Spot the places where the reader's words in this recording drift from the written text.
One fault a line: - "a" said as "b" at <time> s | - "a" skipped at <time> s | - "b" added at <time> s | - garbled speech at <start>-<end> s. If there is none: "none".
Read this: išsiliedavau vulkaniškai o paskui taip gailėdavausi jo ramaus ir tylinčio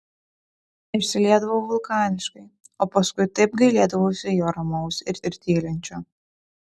- "ir" added at 5.3 s